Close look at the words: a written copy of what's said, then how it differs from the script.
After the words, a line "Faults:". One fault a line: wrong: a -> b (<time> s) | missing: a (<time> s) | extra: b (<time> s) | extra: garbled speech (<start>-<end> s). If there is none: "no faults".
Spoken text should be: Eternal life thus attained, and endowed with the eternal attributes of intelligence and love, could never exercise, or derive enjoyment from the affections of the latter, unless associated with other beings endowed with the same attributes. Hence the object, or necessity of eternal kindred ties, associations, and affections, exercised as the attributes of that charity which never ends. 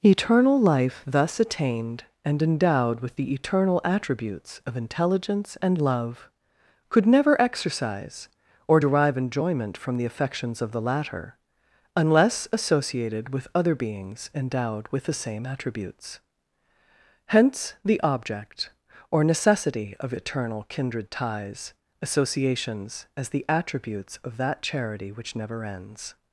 Eternal life thus attained, and endowed with the eternal attributes of intelligence and love, could never exercise, or derive enjoyment from the affections of the latter, unless associated with other beings endowed with the same attributes. Hence the object, or necessity of eternal kindred ties, associations, as the attributes of that charity which never ends.
Faults:
missing: and affections exercised (23.1 s)